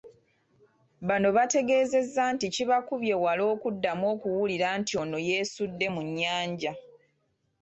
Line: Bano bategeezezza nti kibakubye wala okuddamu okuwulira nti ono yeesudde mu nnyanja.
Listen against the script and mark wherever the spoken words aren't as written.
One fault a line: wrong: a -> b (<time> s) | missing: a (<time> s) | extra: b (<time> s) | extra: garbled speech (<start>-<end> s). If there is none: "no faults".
no faults